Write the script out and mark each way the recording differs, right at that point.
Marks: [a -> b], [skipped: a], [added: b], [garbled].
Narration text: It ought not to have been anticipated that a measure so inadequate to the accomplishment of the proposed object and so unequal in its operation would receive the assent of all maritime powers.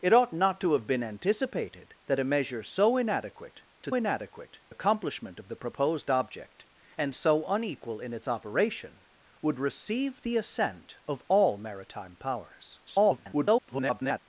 It ought not to have been anticipated that a measure so inadequate to [the -> inadequate] accomplishment of the proposed object and so unequal in its operation would receive the assent of all maritime powers. [garbled]